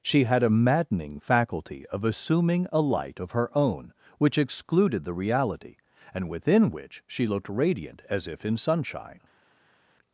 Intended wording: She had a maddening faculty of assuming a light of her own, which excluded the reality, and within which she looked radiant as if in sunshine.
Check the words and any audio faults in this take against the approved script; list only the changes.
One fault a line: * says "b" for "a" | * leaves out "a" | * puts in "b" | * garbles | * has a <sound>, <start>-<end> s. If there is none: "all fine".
all fine